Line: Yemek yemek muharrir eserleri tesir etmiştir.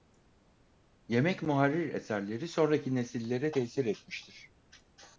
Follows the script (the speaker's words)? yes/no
no